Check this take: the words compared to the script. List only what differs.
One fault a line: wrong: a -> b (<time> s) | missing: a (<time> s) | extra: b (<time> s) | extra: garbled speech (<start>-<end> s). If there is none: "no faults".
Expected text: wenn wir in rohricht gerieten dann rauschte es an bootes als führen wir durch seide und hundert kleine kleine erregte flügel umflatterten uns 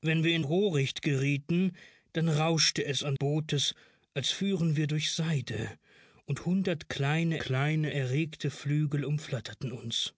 no faults